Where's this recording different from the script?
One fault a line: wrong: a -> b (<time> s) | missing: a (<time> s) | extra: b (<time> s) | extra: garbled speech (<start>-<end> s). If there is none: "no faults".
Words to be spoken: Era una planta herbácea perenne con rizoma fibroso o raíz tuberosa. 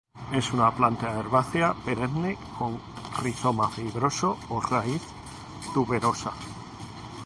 wrong: Era -> Es (0.3 s)